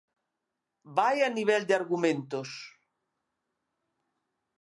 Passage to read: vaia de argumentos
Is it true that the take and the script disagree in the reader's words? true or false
true